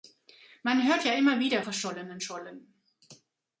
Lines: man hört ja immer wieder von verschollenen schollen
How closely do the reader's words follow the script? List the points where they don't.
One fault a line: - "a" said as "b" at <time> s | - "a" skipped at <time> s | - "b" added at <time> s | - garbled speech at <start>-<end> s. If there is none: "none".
- "von" skipped at 1.6 s